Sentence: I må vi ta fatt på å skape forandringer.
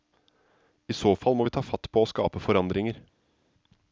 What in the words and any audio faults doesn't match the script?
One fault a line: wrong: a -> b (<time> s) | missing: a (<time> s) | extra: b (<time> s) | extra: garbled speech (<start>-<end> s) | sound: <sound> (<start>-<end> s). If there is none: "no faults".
extra: så fall (1.0 s)